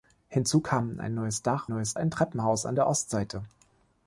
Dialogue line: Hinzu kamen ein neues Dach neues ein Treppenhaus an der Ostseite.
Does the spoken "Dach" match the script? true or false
true